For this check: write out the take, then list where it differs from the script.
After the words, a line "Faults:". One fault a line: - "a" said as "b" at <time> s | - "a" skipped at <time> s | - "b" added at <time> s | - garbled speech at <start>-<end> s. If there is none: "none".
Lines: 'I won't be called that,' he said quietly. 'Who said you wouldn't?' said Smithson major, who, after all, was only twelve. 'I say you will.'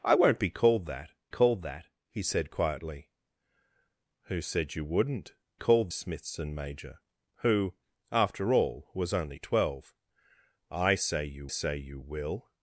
'I won't be called that called that,' he said quietly. 'Who said you wouldn't?' called Smithson major, who, after all, was only twelve. 'I say you say you will.'
Faults:
- "called that" added at 1.3 s
- "said" said as "called" at 5.5 s
- "say you" added at 11.5 s